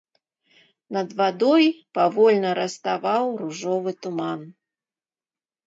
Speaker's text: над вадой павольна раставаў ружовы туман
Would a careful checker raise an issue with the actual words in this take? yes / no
no